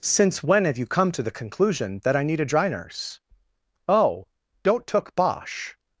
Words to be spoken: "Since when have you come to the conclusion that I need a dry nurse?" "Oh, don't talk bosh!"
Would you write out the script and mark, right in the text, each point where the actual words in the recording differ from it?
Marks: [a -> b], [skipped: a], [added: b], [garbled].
"Since when have you come to the conclusion that I need a dry nurse?" "Oh, don't [talk -> took] bosh!"